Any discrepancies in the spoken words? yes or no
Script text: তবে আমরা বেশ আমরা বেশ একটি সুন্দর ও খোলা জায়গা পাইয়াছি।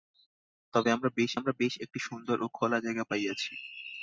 no